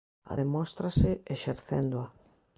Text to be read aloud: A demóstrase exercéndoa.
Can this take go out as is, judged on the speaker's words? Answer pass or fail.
pass